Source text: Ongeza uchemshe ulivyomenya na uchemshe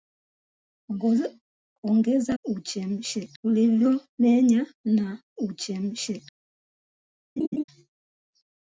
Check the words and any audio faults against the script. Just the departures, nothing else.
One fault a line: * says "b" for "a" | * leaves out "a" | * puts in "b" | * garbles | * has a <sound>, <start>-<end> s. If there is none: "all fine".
* has a laugh, 7.4-7.6 s